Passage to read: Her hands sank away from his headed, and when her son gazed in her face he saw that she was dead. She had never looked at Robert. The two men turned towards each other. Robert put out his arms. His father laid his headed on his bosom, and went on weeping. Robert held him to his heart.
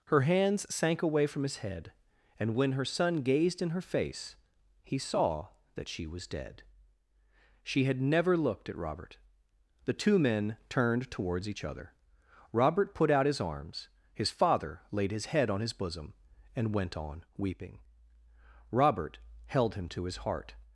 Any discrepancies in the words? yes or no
yes